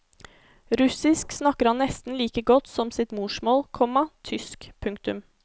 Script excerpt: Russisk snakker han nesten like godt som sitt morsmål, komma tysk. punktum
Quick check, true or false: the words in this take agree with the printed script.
true